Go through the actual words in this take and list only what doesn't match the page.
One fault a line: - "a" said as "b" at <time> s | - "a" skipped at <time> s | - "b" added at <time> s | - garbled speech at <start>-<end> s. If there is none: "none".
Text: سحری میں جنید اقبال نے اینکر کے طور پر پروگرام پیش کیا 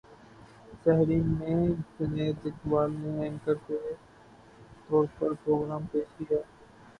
none